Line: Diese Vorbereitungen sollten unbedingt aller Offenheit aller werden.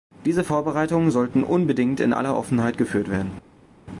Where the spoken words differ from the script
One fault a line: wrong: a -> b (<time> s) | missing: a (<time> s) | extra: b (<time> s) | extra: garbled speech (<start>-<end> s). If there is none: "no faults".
extra: in (2.0 s)
wrong: aller -> geführt (2.8 s)